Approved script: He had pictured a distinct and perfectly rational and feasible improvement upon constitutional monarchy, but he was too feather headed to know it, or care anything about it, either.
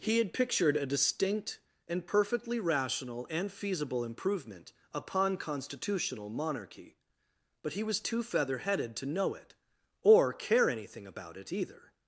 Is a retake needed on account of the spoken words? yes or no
no